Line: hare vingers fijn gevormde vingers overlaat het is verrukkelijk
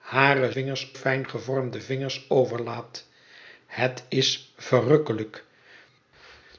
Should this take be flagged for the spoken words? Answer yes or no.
no